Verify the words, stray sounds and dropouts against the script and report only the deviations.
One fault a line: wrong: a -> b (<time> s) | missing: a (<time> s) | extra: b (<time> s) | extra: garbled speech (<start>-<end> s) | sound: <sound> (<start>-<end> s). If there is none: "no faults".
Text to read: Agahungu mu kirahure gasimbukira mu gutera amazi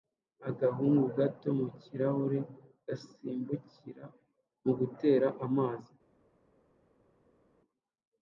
extra: gato (1.2 s)